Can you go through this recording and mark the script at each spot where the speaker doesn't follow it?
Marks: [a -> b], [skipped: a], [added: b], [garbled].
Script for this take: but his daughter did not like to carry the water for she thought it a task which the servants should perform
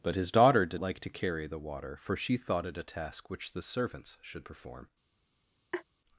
but his daughter did [skipped: not] like to carry the water for she thought it a task which the servants should perform